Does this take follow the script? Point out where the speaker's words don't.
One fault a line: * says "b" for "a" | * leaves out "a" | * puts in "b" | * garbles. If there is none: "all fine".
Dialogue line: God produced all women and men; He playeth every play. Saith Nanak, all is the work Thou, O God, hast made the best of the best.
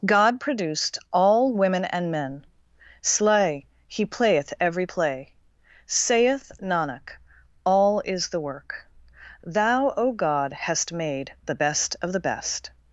* puts in "slay"